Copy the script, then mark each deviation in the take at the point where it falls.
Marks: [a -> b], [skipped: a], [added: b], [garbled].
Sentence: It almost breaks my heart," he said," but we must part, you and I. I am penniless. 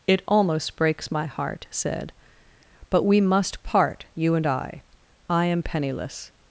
It almost breaks my heart," [skipped: he] said," but we must part, you and I. I am penniless.